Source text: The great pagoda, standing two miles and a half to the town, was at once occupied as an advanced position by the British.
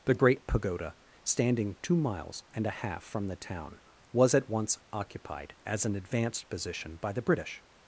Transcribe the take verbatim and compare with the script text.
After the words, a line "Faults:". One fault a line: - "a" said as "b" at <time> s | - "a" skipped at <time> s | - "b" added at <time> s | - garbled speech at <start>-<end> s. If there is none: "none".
The great pagoda, standing two miles and a half from the town, was at once occupied as an advanced position by the British.
Faults:
- "to" said as "from" at 3.0 s